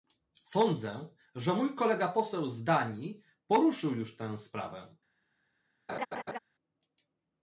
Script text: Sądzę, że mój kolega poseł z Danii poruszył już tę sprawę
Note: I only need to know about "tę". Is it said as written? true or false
true